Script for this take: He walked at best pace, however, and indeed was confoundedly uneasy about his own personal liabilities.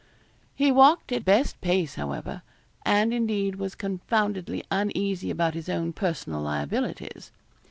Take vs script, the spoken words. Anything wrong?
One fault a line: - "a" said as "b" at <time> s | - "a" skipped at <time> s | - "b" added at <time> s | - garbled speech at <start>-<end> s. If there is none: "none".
none